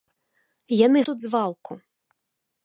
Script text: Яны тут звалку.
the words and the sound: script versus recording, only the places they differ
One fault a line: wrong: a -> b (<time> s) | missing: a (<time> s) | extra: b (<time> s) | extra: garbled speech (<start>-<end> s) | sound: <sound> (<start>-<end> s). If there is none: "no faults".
no faults